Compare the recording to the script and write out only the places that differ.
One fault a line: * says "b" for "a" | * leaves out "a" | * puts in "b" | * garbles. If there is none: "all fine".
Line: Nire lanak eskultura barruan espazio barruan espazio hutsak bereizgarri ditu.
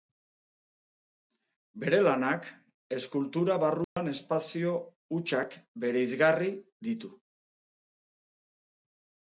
* says "Bere" for "Nire"
* leaves out "barruan espazio"